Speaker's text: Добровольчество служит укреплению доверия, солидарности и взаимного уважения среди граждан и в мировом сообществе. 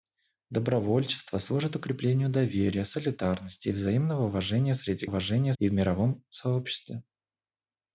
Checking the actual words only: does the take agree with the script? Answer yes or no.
no